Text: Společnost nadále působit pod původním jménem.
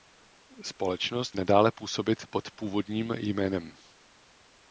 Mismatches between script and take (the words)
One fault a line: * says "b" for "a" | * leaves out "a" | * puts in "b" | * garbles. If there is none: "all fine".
all fine